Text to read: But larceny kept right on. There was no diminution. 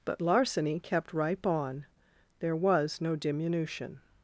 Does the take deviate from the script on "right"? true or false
true